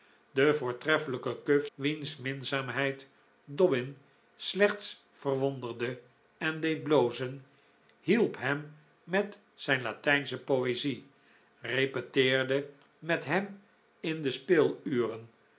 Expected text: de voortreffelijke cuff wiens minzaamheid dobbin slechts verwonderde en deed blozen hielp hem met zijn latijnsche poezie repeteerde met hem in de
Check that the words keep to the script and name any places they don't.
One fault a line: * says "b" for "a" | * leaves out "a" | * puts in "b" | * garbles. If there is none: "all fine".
all fine